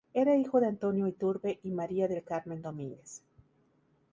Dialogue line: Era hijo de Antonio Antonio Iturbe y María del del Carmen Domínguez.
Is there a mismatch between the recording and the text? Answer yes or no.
yes